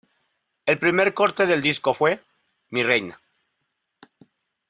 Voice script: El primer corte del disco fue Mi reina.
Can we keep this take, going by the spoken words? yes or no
yes